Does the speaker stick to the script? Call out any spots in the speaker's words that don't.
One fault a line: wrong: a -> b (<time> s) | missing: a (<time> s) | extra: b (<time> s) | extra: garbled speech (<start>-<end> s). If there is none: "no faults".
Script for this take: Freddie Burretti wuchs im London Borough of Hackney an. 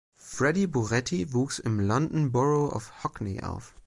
wrong: an -> auf (3.4 s)